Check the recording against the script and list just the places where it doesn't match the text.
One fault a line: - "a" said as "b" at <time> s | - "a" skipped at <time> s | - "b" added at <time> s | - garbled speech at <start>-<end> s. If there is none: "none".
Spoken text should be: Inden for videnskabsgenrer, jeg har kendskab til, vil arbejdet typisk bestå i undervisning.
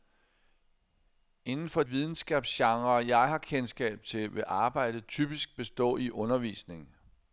none